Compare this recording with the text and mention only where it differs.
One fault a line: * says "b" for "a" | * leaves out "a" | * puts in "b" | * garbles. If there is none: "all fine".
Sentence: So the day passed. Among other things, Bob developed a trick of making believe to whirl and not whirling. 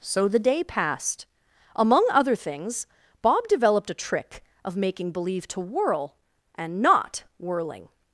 all fine